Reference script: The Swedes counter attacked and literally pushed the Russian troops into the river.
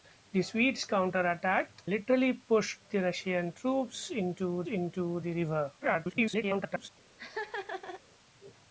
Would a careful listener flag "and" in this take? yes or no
yes